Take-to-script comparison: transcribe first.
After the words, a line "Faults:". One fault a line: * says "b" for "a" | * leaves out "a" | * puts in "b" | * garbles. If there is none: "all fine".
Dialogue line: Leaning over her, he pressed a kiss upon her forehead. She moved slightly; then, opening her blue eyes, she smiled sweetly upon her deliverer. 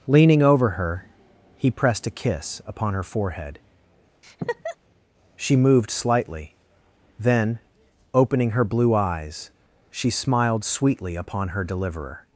Leaning over her, he pressed a kiss upon her forehead. She moved slightly; then, opening her blue eyes, she smiled sweetly upon her deliverer.
Faults:
all fine